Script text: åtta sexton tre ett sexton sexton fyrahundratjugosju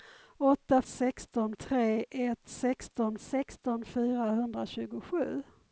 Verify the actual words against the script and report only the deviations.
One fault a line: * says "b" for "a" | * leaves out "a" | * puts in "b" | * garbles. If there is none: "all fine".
all fine